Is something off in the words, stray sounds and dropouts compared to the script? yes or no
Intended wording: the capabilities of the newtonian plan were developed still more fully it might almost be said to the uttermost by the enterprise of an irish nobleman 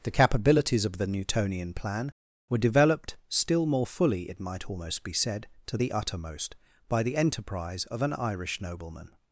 no